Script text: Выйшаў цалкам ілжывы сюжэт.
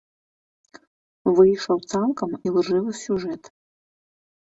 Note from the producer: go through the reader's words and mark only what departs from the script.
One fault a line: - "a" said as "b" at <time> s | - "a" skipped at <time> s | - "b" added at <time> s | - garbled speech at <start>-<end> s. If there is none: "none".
none